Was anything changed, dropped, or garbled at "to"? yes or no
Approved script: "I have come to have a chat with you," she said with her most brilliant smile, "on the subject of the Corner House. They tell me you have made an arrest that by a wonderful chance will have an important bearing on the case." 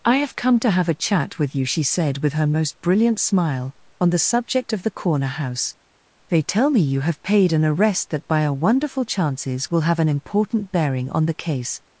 no